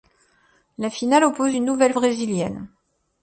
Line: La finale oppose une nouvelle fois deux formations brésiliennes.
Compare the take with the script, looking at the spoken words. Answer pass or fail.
fail